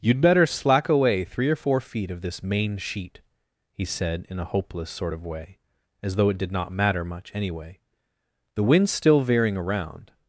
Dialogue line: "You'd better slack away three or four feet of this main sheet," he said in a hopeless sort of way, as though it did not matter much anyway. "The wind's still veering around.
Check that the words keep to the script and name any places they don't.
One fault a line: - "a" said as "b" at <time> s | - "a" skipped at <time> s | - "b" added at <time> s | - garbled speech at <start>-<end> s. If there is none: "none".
none